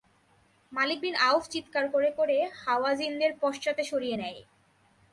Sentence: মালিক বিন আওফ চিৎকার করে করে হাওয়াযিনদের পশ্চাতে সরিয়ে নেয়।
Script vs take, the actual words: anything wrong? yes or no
no